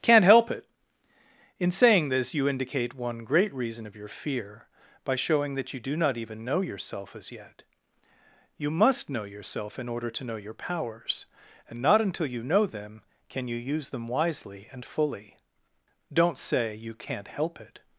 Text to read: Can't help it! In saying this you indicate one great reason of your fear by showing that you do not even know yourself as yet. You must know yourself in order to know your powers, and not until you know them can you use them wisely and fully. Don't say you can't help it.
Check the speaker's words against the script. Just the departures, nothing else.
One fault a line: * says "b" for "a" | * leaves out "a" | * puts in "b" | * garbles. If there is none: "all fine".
all fine